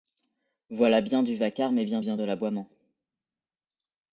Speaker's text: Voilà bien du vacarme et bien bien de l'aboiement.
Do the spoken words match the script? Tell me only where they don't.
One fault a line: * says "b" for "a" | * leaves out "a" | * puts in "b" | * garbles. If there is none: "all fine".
all fine